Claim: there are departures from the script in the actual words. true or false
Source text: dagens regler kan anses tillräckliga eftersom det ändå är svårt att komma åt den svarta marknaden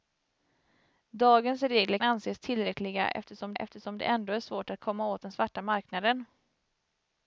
true